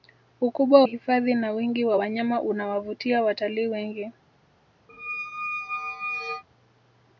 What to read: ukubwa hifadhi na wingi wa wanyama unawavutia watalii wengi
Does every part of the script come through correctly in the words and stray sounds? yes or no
no